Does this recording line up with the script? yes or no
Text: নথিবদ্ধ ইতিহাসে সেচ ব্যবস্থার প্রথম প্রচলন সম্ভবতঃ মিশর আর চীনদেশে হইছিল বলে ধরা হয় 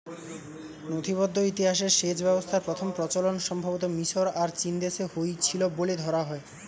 yes